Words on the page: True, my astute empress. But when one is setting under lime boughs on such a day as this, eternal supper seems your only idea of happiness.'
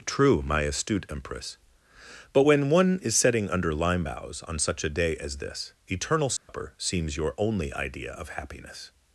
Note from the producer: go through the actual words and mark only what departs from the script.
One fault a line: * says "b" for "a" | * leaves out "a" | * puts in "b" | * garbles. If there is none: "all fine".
all fine